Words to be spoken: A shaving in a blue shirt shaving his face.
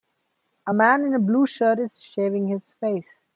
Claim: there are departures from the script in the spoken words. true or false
true